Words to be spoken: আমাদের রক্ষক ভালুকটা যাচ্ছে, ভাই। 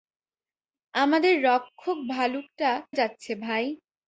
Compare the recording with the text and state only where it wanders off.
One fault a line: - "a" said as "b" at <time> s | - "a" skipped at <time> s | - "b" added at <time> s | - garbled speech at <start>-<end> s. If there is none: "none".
none